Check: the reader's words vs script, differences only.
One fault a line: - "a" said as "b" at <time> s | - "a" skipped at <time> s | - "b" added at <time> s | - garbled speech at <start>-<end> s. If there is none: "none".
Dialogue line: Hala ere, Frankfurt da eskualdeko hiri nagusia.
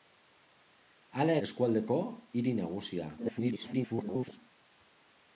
- "ere Frankfurt da" skipped at 1.4 s
- garbled speech at 3.2-4.4 s